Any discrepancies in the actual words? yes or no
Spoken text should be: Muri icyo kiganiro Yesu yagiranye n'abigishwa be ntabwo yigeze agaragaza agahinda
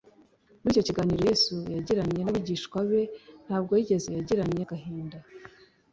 yes